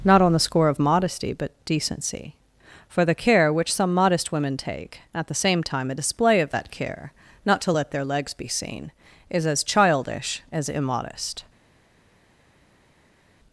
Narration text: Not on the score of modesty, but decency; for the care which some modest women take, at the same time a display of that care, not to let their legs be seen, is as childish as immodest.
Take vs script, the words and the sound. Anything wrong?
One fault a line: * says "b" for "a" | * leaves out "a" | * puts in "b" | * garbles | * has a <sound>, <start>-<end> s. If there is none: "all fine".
all fine